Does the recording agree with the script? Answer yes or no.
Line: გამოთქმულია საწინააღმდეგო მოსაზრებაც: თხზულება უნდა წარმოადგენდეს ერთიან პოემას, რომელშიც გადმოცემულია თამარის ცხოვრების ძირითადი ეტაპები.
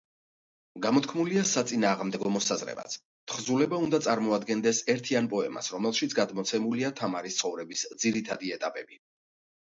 yes